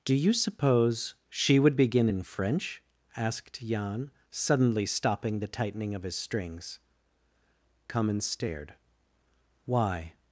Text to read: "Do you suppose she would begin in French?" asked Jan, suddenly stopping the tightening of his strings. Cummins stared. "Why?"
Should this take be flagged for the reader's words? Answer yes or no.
no